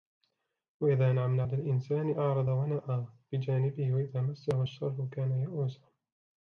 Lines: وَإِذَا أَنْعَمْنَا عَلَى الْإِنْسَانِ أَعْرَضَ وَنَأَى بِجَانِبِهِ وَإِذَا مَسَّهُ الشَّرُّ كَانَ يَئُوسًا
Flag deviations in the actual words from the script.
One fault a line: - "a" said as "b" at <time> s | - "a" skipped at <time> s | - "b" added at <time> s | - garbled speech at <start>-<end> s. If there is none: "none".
none